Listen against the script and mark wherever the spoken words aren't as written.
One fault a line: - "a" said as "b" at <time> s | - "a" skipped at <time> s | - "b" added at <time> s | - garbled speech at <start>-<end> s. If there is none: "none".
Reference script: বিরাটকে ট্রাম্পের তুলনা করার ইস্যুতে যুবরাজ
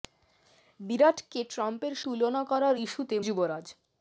none